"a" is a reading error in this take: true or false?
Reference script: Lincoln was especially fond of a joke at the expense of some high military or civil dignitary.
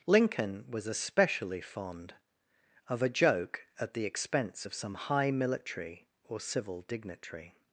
false